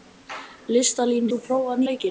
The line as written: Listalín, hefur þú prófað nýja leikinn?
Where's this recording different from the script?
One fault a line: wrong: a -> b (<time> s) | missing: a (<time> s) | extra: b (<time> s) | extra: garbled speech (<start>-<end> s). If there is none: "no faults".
missing: hefur (1.3 s)
missing: nýja (1.8 s)